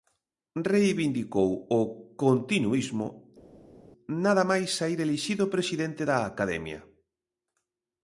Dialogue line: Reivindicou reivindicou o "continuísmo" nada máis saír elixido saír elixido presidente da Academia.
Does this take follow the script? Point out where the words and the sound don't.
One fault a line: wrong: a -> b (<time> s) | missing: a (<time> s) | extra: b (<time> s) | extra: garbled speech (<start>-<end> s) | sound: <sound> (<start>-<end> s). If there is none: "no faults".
missing: reivindicou (1.5 s)
missing: saír elixido (5.4 s)